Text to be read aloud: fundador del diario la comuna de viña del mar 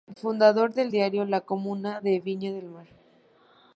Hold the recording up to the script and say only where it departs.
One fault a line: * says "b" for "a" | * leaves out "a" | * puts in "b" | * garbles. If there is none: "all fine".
all fine